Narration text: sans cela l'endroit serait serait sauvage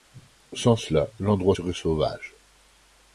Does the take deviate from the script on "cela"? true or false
false